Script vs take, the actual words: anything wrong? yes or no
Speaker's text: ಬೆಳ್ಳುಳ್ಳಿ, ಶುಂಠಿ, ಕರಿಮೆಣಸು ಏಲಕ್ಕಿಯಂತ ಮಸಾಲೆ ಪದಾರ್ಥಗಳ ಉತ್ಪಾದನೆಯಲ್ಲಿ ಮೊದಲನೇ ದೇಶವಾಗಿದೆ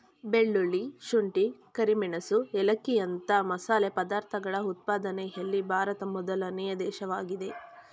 yes